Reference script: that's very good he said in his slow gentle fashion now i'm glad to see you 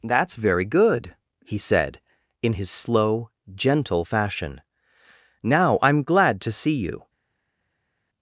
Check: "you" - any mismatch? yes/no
no